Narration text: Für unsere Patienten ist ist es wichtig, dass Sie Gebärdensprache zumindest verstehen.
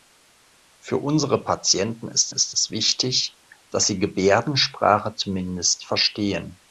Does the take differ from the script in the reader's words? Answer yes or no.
no